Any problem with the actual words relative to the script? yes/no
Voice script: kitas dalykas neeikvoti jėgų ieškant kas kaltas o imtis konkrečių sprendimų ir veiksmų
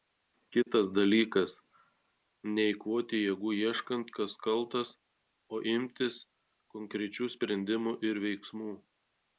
no